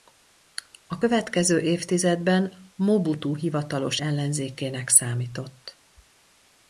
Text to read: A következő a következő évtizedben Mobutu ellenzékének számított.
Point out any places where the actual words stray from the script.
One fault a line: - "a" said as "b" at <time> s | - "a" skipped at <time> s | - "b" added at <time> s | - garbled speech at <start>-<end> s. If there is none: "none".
- "a következő" skipped at 1.6 s
- "hivatalos" added at 3.3 s